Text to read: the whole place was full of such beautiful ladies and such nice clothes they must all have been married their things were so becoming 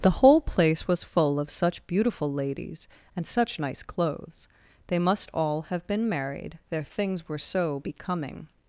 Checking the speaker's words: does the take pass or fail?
pass